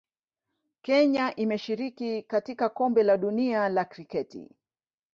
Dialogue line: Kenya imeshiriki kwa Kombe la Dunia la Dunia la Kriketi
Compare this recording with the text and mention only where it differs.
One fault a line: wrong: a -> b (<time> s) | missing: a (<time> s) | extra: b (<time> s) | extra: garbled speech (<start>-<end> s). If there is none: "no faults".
wrong: kwa -> katika (2.2 s)
missing: Dunia la (3.9 s)